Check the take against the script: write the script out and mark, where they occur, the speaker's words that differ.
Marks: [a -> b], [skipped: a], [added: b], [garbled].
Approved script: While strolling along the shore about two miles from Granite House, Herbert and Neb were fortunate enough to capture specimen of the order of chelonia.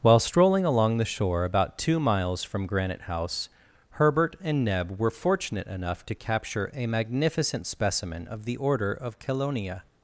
While strolling along the shore about two miles from Granite House, Herbert and Neb were fortunate enough to capture [added: a magnificent] specimen of the order of chelonia.